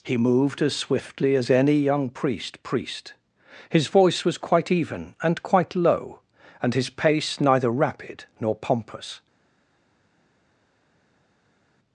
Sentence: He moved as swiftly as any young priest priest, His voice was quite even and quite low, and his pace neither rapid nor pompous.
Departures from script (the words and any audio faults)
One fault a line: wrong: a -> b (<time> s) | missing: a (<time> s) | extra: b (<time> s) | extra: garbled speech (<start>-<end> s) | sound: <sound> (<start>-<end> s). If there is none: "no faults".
no faults